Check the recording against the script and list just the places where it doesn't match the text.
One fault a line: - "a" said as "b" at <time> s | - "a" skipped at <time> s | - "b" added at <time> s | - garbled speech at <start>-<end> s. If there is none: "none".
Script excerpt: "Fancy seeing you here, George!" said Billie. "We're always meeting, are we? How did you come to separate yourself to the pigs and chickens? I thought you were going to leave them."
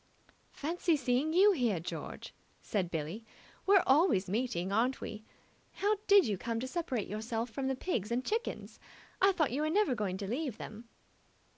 - "are" said as "aren't" at 4.7 s
- "to" said as "from" at 7.5 s
- "never" added at 9.7 s